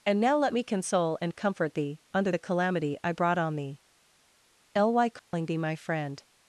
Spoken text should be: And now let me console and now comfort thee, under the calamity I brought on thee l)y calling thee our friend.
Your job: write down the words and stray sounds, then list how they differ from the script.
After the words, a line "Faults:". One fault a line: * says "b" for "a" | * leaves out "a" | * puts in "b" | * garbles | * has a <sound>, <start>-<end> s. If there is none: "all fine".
And now let me console and comfort thee, under the calamity I brought on thee l)y calling thee my friend.
Faults:
* leaves out "now"
* has a dropout, 5.2-5.3 s
* says "my" for "our"